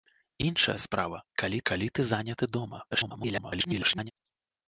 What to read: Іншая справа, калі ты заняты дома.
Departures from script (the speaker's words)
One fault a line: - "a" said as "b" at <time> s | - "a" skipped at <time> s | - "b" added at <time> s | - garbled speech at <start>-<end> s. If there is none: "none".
- "калі" added at 1.7 s
- garbled speech at 2.9-4.1 s